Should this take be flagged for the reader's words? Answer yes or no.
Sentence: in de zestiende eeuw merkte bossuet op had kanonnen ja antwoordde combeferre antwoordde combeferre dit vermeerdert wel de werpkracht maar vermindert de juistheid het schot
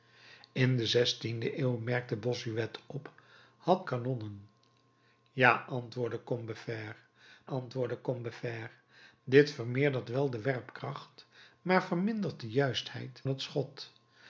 no